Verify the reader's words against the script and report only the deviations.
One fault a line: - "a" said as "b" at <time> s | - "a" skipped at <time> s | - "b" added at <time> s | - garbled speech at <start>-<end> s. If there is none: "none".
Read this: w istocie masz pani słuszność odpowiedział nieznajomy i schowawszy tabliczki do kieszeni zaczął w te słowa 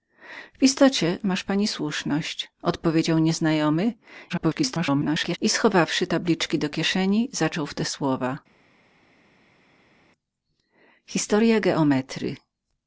- garbled speech at 4.3-5.4 s